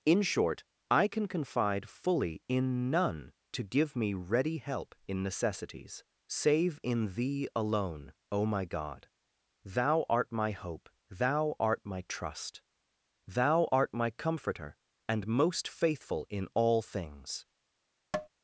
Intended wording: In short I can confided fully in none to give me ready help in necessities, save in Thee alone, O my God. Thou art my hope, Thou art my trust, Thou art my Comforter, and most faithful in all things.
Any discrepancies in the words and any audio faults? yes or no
yes